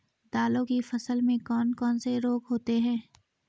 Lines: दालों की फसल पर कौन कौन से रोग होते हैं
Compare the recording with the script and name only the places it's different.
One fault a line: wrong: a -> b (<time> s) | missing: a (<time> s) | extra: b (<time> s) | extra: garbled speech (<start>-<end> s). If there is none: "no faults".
wrong: पर -> में (1.2 s)